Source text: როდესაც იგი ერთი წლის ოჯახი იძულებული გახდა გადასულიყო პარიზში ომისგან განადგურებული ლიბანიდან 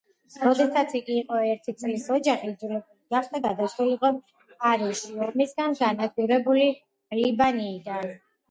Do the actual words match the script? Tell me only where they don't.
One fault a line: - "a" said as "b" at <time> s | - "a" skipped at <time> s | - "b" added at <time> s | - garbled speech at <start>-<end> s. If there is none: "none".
- "იყო" added at 1.2 s